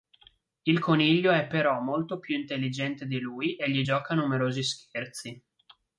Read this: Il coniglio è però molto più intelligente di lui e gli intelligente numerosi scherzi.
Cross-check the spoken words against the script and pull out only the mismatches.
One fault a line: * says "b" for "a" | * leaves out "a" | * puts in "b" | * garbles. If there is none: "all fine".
* says "gioca" for "intelligente"